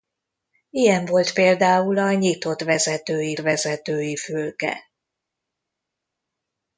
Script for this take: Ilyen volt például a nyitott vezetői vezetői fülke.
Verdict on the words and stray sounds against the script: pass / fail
pass